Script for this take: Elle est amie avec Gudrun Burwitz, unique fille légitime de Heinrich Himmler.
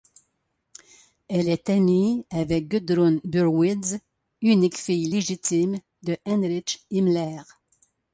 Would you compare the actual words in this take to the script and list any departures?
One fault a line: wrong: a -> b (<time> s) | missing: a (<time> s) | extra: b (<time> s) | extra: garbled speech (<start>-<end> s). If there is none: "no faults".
no faults